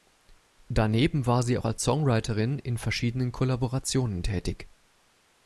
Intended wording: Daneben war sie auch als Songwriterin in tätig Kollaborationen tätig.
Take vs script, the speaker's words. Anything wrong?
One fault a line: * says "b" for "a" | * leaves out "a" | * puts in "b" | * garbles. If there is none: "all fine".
* says "verschiedenen" for "tätig"